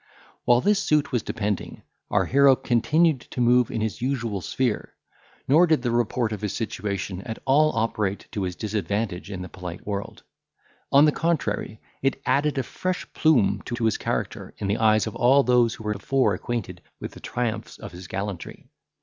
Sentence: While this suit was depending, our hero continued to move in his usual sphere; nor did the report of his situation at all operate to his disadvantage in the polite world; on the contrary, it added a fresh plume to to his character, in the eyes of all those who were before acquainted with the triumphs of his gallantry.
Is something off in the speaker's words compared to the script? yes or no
no